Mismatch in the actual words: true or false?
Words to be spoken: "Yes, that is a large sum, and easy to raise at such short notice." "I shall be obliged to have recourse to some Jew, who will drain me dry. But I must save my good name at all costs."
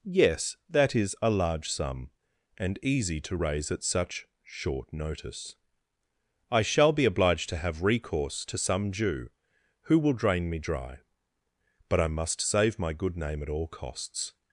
false